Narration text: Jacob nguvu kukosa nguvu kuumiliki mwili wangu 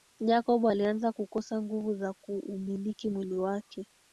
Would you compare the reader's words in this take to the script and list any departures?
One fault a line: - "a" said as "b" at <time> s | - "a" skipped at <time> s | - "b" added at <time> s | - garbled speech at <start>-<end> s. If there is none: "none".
- "nguvu" said as "alianza" at 0.6 s
- "za" added at 1.9 s
- "wangu" said as "wake" at 3.4 s